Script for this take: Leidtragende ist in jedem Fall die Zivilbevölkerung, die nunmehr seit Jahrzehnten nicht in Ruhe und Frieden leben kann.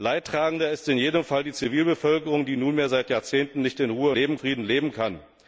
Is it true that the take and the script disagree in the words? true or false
true